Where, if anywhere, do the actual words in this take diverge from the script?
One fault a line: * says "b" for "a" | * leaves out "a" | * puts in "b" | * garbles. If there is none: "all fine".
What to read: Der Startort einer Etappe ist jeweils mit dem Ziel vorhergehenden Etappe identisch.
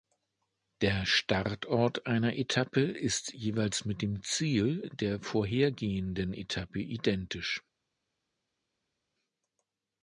* puts in "der"